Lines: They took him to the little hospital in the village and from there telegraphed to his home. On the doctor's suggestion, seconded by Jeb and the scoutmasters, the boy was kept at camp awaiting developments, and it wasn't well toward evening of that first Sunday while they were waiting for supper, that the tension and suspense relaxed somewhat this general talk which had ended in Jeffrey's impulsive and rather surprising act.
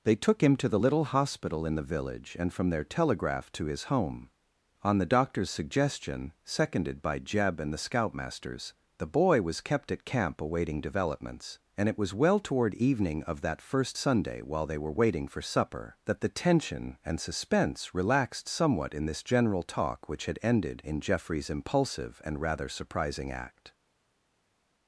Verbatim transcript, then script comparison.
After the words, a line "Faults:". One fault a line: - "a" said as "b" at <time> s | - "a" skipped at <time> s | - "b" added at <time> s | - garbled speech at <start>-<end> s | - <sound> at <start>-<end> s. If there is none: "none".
They took him to the little hospital in the village and from there telegraphed to his home. On the doctor's suggestion, seconded by Jeb and the scoutmasters, the boy was kept at camp awaiting developments, and it was well toward evening of that first Sunday while they were waiting for supper, that the tension and suspense relaxed somewhat in this general talk which had ended in Jeffrey's impulsive and rather surprising act.
Faults:
- "wasn't" said as "was" at 12.0 s
- "in" added at 18.9 s